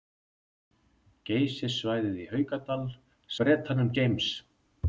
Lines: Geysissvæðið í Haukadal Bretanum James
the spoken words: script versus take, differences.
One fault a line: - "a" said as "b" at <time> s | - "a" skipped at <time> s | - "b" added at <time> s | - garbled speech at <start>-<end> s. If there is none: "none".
none